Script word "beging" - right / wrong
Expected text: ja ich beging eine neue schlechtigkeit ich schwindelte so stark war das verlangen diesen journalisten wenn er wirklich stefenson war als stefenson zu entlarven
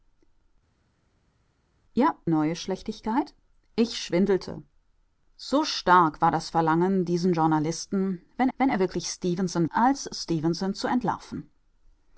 wrong